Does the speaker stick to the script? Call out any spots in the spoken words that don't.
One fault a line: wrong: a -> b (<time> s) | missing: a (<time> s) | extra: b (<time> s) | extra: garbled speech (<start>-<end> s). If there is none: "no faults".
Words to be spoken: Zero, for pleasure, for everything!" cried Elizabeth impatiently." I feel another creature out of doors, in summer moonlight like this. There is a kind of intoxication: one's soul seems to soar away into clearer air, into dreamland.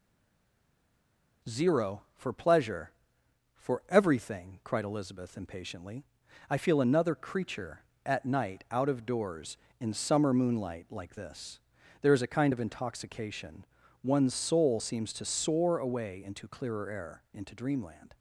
extra: at night (8.1 s)